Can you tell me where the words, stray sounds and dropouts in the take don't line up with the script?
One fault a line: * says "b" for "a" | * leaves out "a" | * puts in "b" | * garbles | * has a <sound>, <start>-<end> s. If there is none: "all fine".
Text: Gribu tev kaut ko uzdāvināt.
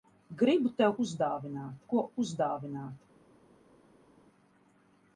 * says "uzdāvināt" for "kaut"